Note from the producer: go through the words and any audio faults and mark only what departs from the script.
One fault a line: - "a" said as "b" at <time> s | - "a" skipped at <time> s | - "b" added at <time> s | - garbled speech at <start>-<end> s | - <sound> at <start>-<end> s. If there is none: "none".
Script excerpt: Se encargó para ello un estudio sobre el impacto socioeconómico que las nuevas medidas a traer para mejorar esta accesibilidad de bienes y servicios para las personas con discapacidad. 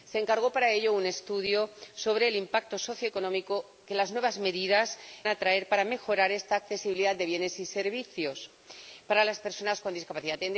none